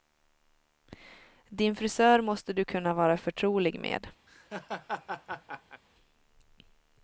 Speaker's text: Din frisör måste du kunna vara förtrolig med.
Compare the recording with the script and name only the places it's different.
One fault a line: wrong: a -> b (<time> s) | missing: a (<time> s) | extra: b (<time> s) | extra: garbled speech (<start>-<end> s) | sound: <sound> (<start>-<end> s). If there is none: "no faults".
sound: laugh (4.3-5.8 s)